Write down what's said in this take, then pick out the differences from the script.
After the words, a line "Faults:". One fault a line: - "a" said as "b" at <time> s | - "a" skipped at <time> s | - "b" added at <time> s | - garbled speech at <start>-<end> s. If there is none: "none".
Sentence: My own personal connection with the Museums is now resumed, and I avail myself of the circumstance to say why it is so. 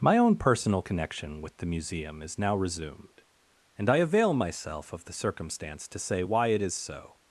My own personal connection with the Museum is now resumed, and I avail myself of the circumstance to say why it is so.
Faults:
- "Museums" said as "Museum" at 1.6 s